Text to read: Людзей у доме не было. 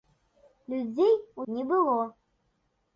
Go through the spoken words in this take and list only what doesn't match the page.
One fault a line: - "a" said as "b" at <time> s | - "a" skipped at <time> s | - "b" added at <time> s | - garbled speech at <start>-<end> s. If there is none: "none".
- "доме" skipped at 1.4 s